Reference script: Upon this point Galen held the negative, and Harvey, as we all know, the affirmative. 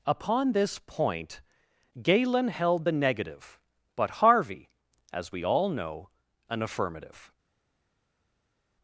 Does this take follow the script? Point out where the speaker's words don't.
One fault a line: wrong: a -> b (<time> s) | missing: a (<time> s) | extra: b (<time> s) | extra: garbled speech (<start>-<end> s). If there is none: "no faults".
wrong: and -> but (3.9 s)
wrong: the -> an (6.5 s)